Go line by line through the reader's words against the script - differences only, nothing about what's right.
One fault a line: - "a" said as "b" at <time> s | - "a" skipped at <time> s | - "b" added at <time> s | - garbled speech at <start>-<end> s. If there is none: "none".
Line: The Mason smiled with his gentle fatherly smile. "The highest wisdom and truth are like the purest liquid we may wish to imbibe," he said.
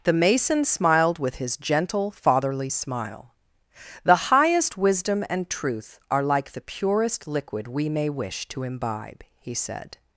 none